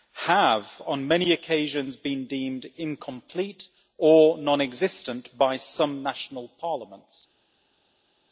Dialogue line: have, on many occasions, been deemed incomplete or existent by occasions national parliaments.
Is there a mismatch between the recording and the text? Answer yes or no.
yes